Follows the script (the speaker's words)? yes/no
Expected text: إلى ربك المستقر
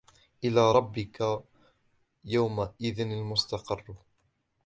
no